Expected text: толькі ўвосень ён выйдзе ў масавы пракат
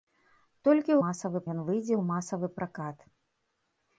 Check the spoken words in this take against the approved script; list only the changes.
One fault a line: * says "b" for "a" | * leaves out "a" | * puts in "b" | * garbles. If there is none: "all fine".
* says "масавы" for "ўвосень"